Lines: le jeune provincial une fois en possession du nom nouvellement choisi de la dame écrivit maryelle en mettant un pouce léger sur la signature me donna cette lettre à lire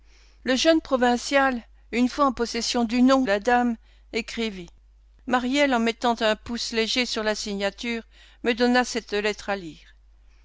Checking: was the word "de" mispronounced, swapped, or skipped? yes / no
yes